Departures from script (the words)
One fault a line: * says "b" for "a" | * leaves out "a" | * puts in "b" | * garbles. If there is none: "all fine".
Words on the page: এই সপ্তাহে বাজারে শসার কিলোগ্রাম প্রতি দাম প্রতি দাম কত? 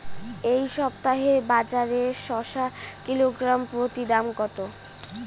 * leaves out "প্রতি দাম"